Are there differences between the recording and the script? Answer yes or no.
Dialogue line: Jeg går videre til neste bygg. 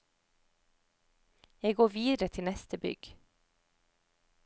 no